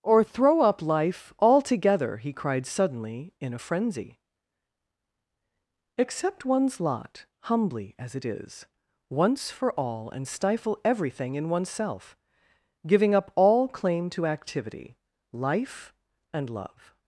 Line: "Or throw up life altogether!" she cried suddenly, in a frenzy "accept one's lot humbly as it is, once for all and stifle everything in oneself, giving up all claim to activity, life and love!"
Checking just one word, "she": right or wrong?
wrong